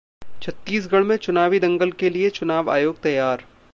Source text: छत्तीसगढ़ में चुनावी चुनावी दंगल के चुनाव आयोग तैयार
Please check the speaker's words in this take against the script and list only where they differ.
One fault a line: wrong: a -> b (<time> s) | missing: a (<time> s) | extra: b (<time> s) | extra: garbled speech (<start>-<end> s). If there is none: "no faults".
missing: चुनावी (1.6 s)
extra: लिए (2.1 s)